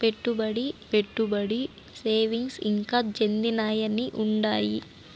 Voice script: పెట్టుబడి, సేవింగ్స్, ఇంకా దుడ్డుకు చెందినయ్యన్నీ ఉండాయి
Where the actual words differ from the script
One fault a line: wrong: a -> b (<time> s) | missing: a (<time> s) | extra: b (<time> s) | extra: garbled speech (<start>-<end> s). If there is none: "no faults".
extra: పెట్టుబడి (0.9 s)
missing: దుడ్డుకు (3.0 s)